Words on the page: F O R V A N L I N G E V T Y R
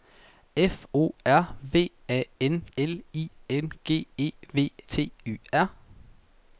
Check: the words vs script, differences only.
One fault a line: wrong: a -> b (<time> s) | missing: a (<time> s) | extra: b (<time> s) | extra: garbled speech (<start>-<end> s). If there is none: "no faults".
no faults